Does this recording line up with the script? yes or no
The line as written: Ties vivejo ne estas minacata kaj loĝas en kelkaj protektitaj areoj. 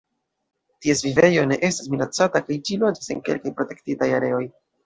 no